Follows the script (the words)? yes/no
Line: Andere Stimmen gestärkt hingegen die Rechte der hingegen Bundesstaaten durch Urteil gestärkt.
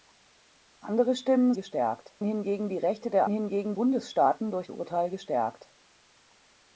yes